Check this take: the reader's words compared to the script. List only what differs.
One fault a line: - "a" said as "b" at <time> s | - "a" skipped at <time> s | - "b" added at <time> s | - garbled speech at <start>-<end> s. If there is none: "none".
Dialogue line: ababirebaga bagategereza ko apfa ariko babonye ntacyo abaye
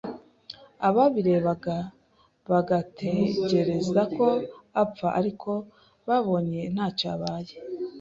none